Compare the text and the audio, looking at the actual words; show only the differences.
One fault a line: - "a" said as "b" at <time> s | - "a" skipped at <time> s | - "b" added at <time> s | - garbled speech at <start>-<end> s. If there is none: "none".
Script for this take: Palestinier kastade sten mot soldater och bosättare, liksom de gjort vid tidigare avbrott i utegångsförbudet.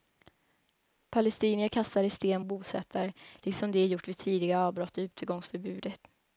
- "mot soldater" skipped at 2.4 s